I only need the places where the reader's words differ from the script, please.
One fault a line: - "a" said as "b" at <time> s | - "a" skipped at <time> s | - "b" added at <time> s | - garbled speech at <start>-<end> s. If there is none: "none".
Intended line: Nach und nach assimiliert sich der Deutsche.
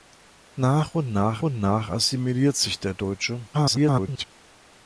- "und nach" added at 1.4 s
- garbled speech at 3.5-4.2 s